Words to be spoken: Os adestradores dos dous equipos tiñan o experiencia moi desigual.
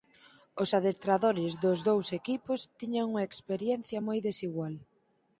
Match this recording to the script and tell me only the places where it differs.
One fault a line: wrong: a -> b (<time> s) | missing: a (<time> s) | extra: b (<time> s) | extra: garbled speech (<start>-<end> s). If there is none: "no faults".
wrong: o -> unha (3.1 s)